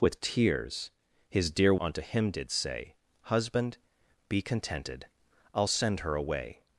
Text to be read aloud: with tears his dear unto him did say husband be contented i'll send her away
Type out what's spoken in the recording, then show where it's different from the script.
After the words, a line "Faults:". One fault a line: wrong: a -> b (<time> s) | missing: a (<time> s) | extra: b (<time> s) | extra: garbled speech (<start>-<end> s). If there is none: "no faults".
with tears his dear unto him did say husband be contented i'll send her away
Faults:
no faults